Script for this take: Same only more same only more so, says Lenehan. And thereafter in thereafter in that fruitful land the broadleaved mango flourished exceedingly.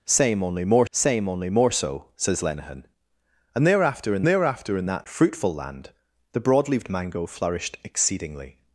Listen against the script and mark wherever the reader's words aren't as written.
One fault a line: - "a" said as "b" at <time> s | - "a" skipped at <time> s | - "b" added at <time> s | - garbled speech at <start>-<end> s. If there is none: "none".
none